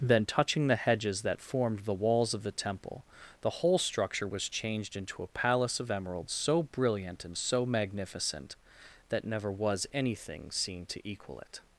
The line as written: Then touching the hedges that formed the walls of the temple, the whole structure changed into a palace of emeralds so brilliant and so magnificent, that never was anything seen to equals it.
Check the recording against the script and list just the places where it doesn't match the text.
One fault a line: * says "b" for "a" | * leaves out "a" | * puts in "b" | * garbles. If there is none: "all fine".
* puts in "was"
* says "equal" for "equals"